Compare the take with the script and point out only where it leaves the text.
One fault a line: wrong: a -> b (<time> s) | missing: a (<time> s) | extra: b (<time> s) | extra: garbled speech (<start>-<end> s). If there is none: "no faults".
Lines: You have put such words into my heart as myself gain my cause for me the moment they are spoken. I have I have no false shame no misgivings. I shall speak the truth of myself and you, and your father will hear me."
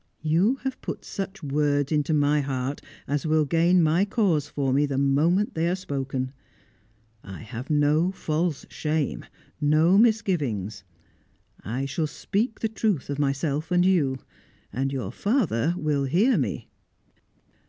wrong: myself -> will (3.3 s)
missing: I have (7.7 s)